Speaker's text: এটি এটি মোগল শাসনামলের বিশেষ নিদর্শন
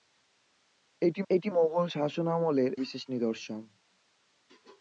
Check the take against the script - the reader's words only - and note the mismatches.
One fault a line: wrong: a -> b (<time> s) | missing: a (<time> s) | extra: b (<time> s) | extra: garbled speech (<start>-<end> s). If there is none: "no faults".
no faults